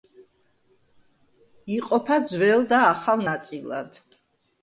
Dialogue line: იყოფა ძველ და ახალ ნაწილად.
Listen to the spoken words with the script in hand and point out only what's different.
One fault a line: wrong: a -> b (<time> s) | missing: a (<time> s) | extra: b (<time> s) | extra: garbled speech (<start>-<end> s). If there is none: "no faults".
no faults